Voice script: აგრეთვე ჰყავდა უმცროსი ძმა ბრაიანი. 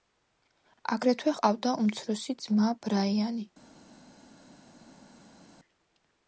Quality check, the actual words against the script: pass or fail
pass